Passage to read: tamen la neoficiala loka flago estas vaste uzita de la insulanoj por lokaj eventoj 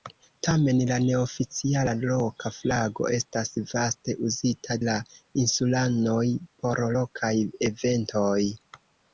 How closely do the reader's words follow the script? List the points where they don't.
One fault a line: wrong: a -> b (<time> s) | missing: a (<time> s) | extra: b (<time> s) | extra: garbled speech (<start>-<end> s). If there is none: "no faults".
missing: de (4.8 s)